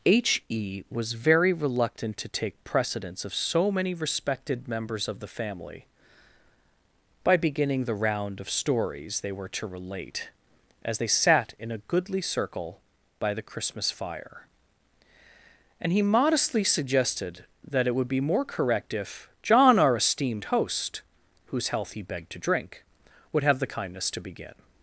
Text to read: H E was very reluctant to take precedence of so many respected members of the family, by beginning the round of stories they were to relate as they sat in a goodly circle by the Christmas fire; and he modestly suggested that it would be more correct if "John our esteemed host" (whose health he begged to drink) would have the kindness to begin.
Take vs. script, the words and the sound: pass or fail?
pass